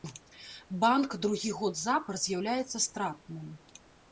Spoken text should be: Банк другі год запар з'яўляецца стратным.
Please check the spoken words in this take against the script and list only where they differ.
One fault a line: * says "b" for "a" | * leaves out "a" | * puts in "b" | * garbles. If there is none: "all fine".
all fine